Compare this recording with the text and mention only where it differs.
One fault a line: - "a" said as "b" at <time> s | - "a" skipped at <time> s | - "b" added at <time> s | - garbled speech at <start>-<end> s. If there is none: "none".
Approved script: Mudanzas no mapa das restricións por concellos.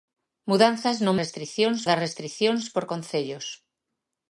- "mapa" said as "restricións" at 1.2 s